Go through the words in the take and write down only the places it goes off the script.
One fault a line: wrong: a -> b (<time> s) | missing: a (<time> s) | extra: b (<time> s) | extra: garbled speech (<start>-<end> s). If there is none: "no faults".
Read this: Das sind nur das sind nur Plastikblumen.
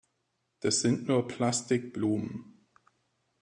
missing: das sind nur (1.3 s)